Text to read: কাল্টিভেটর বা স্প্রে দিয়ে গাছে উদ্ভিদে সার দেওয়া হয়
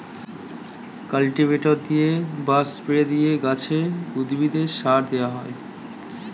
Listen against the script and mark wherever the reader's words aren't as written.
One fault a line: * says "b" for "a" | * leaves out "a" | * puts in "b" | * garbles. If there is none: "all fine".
* puts in "দিয়ে"